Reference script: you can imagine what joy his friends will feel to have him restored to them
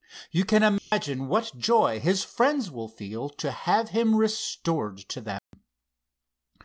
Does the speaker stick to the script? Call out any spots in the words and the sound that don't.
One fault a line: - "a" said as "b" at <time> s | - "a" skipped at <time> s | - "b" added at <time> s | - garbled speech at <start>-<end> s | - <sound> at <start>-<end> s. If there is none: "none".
- dropout at 0.8-0.9 s
- dropout at 5.4-5.5 s